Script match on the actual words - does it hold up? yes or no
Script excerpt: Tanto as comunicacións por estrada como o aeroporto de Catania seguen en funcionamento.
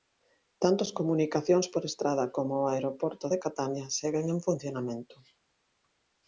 yes